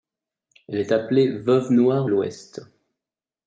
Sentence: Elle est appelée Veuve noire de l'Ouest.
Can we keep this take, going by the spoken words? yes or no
no